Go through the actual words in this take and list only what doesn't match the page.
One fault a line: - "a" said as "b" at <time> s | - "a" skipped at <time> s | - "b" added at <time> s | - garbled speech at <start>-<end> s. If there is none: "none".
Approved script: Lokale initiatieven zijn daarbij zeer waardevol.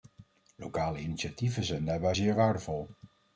none